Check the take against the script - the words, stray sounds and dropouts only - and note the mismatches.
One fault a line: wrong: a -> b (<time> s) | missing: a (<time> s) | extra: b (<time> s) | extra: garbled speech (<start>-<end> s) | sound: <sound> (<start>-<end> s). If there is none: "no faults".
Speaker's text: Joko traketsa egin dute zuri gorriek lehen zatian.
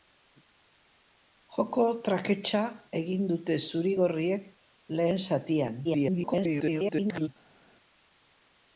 extra: garbled speech (5.8-7.3 s)